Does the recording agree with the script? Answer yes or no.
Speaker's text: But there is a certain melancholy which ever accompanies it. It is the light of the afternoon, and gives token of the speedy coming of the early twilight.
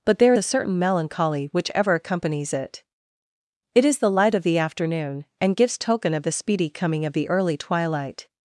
no